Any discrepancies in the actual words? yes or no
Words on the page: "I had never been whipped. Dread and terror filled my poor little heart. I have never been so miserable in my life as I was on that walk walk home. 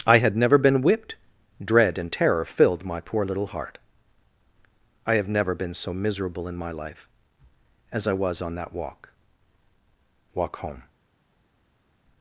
no